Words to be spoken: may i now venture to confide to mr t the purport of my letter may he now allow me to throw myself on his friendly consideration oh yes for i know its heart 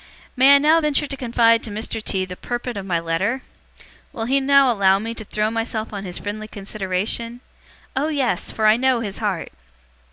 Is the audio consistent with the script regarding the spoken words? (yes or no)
no